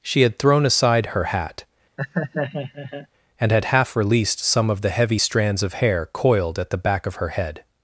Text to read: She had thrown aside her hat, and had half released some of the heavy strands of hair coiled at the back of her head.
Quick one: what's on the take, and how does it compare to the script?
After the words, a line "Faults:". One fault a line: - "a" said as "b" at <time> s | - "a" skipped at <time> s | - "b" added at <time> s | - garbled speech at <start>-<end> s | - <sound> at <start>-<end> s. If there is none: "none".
She had thrown aside her hat, and had half released some of the heavy strands of hair coiled at the back of her head.
Faults:
- laugh at 2.0-3.1 s